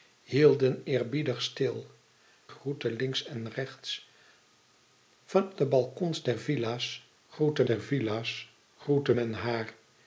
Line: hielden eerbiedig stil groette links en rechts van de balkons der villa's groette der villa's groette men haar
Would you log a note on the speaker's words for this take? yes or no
no